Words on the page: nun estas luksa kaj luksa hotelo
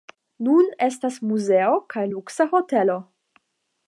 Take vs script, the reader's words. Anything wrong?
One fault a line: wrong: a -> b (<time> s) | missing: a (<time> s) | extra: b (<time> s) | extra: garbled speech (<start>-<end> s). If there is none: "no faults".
wrong: luksa -> muzeo (1.3 s)